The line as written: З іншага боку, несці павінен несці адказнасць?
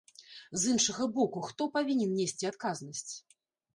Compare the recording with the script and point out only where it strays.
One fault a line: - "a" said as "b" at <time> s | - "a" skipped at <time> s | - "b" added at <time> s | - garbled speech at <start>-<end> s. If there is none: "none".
- "несці" said as "хто" at 1.5 s